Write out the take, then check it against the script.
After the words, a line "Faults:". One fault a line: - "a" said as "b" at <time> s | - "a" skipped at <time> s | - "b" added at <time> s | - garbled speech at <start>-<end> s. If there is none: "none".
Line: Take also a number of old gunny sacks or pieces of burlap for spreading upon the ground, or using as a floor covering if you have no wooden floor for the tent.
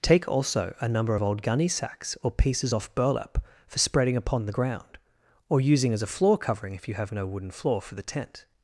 Take also a number of old gunny sacks or pieces off burlap for spreading upon the ground, or using as a floor covering if you have no wooden floor for the tent.
Faults:
- "of" said as "off" at 2.7 s